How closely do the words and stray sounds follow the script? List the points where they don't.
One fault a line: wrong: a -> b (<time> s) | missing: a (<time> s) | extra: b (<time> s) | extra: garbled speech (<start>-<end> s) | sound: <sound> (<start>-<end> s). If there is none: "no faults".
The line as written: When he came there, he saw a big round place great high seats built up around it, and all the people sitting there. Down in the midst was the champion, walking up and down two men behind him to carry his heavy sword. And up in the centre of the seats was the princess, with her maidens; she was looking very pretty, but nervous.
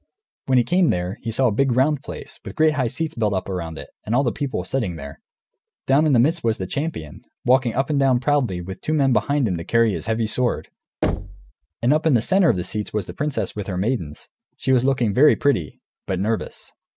extra: with (2.4 s)
extra: proudly with (8.2 s)
sound: thud (11.0-11.5 s)